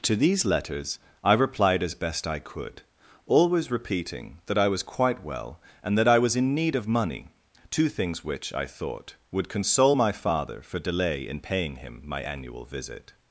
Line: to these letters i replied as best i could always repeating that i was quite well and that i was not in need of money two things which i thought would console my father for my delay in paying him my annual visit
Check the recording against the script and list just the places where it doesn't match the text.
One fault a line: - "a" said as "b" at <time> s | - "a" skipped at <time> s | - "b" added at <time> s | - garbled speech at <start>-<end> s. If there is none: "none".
- "not" skipped at 6.4 s
- "my" skipped at 10.8 s